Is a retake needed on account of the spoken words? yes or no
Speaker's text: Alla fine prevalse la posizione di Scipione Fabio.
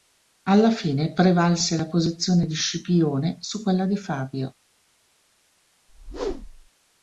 yes